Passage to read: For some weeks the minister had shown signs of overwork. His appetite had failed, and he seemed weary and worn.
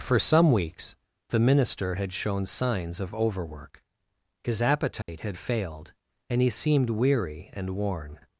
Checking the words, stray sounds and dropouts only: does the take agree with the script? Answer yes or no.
no